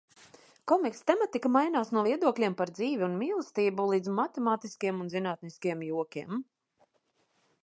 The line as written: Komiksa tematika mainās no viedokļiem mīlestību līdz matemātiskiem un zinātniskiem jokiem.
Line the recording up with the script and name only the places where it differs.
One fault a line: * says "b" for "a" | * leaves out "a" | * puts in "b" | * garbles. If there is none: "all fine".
* puts in "par dzīvi un"